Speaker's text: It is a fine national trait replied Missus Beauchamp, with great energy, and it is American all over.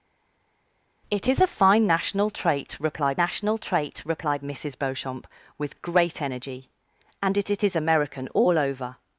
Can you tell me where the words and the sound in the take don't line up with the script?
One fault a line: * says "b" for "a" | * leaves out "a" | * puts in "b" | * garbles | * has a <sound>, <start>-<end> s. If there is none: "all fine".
* puts in "national trait replied"
* puts in "it"